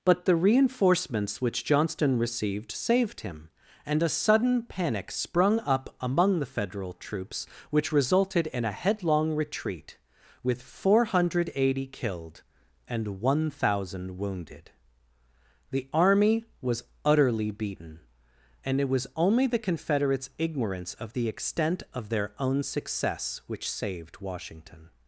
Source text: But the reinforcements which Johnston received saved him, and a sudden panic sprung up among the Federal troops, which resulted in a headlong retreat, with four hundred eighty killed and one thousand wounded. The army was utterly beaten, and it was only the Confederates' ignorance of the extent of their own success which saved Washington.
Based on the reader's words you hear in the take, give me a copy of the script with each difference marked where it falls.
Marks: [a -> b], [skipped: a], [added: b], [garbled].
But the reinforcements which Johnston received saved him, and a sudden panic sprung up among the Federal troops, which resulted in a headlong retreat, with four hundred eighty killed and one thousand wounded. The army was utterly beaten, and it was only the Confederates' ignorance of the extent of their own success which saved Washington.